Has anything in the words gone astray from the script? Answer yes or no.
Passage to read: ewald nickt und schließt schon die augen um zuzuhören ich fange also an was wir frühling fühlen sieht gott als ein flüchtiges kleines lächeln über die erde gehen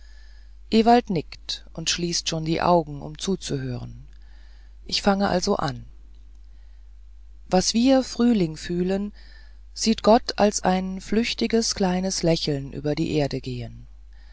no